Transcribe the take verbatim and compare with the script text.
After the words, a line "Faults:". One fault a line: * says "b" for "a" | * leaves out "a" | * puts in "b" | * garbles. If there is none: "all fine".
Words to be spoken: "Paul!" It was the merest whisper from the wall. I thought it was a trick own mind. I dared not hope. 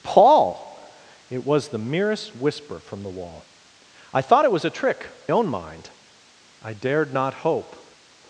"Paul!" It was the merest whisper from the wall. I thought it was a trick own mind. I dared not hope.
Faults:
all fine